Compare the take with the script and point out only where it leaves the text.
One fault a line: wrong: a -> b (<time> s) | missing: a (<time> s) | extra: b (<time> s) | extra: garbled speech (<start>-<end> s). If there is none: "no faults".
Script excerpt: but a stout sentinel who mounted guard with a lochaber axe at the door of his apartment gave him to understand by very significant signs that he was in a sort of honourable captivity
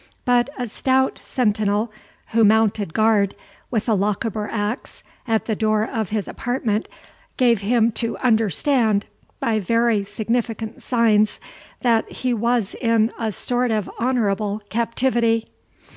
no faults